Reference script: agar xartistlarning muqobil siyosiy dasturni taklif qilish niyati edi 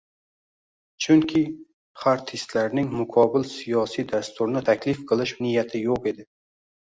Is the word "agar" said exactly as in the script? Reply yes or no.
no